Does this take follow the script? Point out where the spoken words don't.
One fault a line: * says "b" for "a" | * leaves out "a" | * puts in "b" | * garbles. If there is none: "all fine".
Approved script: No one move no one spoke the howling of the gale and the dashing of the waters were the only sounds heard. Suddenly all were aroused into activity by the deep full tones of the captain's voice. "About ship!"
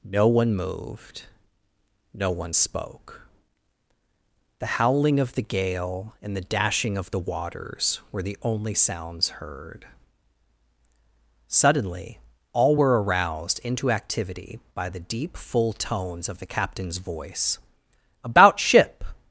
* says "moved" for "move"